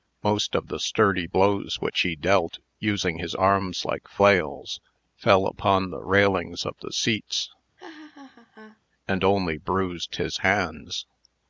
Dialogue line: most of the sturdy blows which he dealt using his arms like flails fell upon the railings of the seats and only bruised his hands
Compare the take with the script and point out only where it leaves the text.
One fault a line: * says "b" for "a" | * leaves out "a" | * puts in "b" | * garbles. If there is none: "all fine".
all fine